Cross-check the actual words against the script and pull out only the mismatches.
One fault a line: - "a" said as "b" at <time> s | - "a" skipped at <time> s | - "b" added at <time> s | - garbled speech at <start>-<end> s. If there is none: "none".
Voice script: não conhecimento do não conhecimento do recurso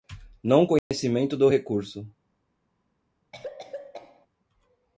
- "não conhecimento do" skipped at 1.5 s